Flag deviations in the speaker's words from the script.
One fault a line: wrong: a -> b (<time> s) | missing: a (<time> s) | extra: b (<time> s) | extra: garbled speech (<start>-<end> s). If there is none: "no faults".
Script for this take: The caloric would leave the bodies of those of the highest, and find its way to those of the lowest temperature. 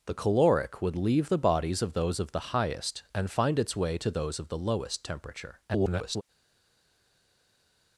extra: garbled speech (5.7-6.2 s)